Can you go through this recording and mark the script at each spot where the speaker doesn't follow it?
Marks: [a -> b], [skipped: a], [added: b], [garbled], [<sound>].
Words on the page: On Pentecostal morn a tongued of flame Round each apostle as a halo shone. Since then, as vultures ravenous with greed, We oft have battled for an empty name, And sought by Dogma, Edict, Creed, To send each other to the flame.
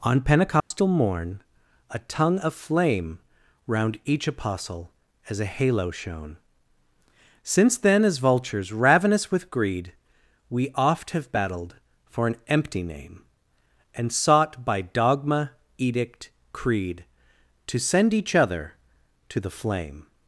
On Pentecostal [dropout] morn a [tongued -> tongue] of flame Round each apostle as a halo shone. Since then, as vultures ravenous with greed, We oft have battled for an empty name, And sought by Dogma, Edict, Creed, To send each other to the flame.